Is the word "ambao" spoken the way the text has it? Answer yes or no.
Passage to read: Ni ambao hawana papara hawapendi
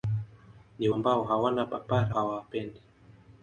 yes